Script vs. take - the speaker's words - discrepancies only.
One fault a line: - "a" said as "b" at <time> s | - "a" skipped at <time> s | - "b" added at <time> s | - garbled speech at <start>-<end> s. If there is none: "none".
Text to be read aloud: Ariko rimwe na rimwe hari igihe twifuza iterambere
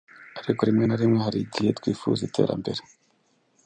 none